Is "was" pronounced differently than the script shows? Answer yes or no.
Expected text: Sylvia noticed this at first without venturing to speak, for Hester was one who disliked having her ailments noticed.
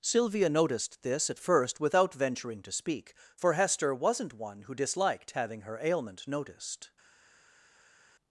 yes